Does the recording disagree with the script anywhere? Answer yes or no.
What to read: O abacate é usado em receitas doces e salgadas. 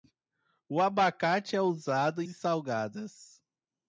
yes